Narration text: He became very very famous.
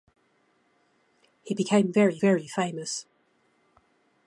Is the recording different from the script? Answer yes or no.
no